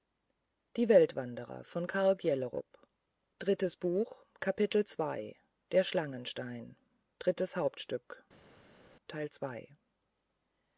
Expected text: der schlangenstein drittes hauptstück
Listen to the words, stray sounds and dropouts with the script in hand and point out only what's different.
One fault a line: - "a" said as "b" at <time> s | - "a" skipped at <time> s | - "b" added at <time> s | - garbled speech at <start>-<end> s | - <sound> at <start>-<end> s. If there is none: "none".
none